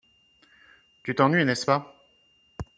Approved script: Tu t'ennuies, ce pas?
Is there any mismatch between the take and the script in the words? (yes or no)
yes